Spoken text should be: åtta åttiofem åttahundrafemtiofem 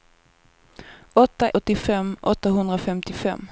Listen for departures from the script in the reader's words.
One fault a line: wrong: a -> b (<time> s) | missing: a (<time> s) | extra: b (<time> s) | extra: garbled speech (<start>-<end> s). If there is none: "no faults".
no faults